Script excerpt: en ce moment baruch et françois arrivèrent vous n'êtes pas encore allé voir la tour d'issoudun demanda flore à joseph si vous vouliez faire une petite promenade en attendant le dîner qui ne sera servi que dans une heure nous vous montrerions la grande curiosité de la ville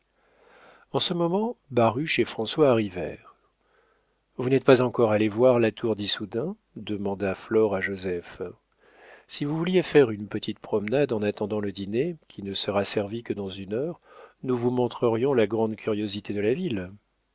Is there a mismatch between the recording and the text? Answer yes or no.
no